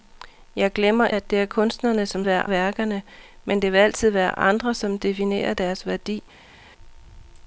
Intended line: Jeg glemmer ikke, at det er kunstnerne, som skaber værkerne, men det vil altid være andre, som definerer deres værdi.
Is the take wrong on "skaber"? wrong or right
wrong